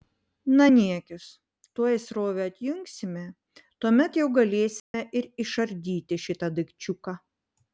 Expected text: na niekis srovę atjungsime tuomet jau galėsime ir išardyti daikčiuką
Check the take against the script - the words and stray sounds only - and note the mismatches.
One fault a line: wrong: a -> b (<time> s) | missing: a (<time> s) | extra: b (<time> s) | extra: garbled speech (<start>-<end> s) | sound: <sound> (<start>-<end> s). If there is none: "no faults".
extra: tuoj (1.8 s)
sound: dropout (4.8-4.9 s)
extra: šitą (6.3 s)